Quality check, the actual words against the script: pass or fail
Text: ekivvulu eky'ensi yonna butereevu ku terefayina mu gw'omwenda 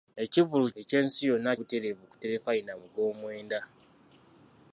pass